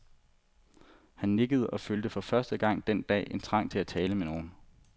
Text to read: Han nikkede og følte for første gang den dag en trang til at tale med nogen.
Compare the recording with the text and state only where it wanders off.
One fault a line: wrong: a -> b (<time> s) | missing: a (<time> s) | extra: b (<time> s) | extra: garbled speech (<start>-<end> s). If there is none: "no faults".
no faults